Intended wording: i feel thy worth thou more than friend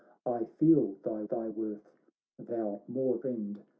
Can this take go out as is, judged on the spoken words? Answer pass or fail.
fail